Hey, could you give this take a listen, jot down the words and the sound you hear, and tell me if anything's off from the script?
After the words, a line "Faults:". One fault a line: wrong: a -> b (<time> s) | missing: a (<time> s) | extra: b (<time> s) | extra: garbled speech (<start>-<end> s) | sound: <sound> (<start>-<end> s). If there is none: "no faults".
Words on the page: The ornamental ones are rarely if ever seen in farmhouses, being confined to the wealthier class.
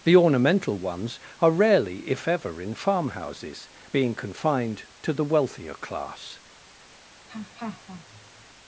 The ornamental ones are rarely if ever in farmhouses, being confined to the wealthier class.
Faults:
missing: seen (2.6 s)
sound: laugh (7.3-8.5 s)